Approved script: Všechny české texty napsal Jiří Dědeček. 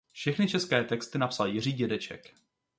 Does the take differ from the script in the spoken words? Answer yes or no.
no